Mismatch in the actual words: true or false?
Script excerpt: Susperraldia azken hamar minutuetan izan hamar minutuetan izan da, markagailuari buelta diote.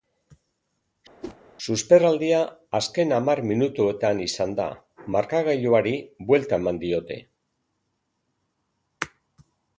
true